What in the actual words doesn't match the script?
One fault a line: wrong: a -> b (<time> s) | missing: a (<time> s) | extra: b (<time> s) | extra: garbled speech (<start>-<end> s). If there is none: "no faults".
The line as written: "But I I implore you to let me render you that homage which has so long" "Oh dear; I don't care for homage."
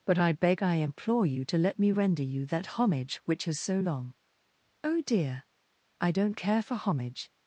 extra: beg (0.3 s)